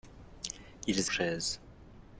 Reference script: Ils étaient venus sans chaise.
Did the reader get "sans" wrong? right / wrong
wrong